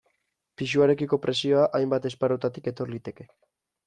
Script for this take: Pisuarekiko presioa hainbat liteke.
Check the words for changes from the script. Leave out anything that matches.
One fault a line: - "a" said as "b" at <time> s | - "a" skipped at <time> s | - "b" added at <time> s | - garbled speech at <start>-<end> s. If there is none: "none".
- "esparrutatik etor" added at 2.1 s